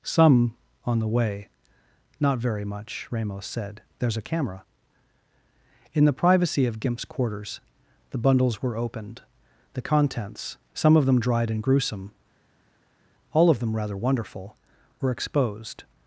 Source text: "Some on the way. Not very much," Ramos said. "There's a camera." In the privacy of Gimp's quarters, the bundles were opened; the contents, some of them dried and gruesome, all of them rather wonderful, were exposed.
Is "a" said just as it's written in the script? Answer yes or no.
yes